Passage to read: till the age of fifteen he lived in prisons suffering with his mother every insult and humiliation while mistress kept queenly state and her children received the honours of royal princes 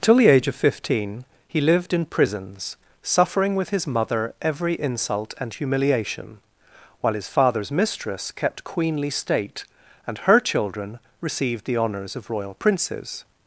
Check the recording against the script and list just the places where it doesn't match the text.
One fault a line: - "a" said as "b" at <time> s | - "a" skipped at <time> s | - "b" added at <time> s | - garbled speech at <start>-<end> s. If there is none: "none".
- "his father's" added at 7.1 s